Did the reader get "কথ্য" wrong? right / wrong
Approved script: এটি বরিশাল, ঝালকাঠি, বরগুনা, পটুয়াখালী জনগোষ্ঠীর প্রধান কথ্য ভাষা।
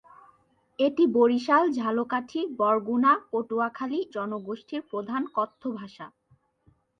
right